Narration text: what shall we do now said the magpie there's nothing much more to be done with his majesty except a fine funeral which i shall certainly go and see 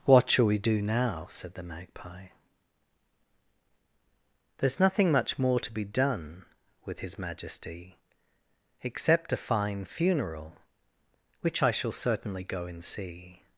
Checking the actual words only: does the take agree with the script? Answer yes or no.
yes